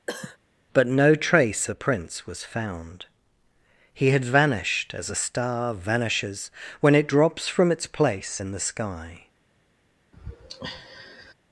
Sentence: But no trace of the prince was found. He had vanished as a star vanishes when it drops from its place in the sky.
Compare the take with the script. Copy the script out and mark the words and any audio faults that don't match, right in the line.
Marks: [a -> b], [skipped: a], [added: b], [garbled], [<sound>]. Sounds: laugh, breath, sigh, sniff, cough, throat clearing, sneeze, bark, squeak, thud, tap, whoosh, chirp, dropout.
[cough] But no trace [skipped: of] the prince was found. He had vanished as a star vanishes when it drops from its place in the sky. [sigh]